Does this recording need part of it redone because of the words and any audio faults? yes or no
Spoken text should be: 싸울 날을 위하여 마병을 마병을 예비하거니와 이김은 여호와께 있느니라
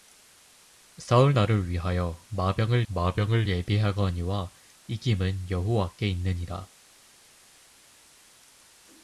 no